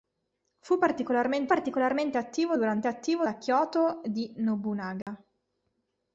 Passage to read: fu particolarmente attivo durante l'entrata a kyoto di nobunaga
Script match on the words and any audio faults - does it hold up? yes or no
no